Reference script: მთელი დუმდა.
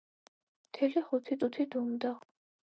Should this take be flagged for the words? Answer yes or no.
yes